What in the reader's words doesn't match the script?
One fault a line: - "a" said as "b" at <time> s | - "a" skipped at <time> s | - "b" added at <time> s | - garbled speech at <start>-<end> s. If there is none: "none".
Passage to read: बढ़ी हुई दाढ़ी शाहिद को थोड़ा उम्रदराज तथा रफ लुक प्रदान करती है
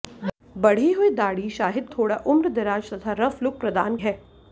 - "को" skipped at 1.9 s
- "करती" skipped at 4.0 s